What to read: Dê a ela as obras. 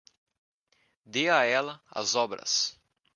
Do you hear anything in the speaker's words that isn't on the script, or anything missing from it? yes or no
no